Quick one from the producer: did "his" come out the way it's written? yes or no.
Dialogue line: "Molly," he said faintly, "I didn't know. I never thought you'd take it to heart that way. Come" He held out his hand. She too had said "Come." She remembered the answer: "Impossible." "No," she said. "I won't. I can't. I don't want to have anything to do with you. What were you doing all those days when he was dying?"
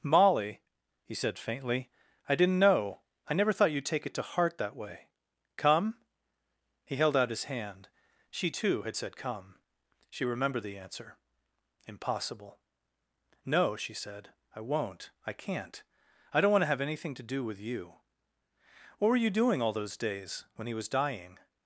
yes